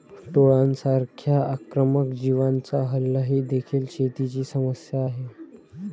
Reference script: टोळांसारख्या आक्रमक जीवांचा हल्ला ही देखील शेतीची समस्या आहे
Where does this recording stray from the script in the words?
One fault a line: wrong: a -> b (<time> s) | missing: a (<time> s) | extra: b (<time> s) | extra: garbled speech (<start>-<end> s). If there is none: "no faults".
no faults